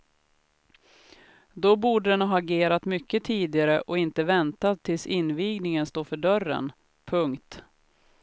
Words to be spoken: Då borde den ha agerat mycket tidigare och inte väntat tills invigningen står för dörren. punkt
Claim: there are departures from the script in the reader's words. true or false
false